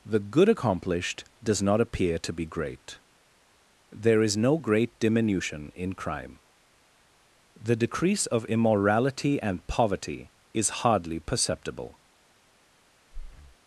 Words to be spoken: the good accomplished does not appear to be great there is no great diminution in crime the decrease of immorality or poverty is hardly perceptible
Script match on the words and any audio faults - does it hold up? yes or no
no